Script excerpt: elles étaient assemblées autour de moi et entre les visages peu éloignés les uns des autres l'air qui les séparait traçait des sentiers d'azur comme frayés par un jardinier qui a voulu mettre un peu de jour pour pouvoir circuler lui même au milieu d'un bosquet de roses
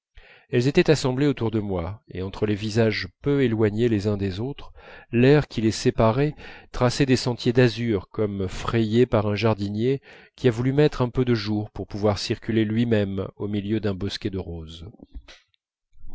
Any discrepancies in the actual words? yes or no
no